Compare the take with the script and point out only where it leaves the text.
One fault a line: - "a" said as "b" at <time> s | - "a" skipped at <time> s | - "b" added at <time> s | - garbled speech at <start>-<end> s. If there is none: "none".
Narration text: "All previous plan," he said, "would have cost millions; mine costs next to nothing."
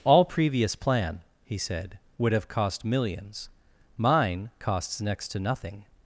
none